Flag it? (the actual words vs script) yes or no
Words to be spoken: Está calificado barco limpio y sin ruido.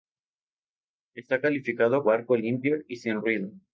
no